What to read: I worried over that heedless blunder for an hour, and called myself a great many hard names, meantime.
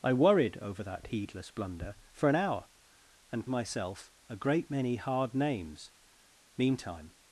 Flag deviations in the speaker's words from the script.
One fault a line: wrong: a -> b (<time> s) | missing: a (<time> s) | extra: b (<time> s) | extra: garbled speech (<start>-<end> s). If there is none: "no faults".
missing: called (3.5 s)